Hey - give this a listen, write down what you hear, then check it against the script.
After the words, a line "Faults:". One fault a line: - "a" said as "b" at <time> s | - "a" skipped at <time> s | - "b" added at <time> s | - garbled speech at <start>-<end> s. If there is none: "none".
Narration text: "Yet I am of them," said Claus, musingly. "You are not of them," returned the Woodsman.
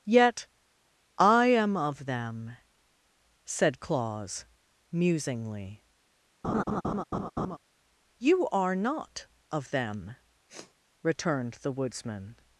"Yet I am of them," said Claus, musingly. "You are not of them," returned the Woodsman.
Faults:
none